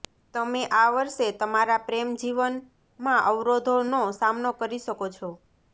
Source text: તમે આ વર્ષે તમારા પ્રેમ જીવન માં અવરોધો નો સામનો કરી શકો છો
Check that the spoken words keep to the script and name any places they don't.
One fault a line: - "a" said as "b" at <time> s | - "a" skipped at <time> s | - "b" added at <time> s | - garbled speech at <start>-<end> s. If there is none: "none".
none